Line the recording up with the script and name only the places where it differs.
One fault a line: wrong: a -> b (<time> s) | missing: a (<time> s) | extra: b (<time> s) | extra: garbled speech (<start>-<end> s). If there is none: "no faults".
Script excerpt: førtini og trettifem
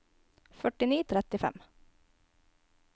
no faults